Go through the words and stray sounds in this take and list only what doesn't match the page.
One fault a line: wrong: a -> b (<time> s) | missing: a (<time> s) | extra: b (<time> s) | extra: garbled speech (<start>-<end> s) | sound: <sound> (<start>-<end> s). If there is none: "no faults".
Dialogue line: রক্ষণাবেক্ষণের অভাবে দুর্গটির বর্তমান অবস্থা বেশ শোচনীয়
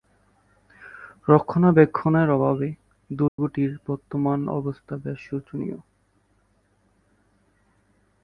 sound: dropout (3.3-3.4 s)